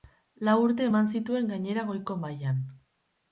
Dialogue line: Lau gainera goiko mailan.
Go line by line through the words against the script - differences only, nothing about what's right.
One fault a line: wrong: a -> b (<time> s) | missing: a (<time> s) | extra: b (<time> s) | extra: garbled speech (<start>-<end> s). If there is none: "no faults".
extra: urte eman zituen (0.6 s)